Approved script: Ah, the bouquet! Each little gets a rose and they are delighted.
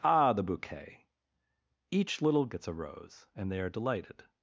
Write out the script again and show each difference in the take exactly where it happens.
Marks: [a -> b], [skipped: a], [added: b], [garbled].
Ah, the bouquet! Each little gets a rose and they are delighted.